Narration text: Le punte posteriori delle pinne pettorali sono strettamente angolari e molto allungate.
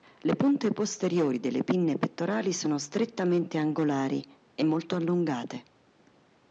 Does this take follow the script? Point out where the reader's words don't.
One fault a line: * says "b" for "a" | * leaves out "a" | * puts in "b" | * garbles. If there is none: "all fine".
all fine